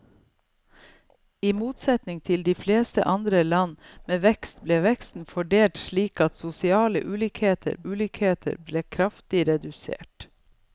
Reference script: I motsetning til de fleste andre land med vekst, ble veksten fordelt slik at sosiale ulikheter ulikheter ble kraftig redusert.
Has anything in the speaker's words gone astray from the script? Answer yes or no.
no